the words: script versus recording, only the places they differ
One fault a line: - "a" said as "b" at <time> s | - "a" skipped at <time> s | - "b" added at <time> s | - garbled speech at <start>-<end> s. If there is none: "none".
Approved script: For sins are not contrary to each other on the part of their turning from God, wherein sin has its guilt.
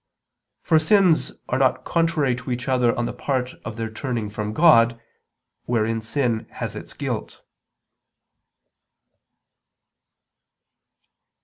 none